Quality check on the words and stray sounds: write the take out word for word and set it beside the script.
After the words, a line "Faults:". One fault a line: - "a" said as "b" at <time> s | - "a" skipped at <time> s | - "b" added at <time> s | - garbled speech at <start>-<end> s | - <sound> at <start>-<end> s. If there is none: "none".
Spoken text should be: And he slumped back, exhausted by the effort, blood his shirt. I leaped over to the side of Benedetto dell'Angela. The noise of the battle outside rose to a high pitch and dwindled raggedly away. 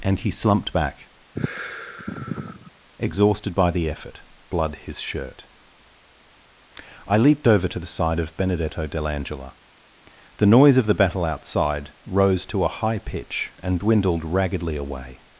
And he slumped back, exhausted by the effort, blood his shirt. I leaped over to the side of Benedetto dell'Angela. The noise of the battle outside rose to a high pitch and dwindled raggedly away.
Faults:
- sigh at 1.3-2.7 s